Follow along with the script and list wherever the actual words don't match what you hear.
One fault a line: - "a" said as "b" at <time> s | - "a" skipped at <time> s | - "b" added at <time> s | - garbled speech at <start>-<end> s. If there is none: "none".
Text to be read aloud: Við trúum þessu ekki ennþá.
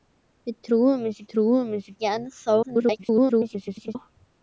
- "trúum þessu" added at 1.3 s
- garbled speech at 2.6-4.0 s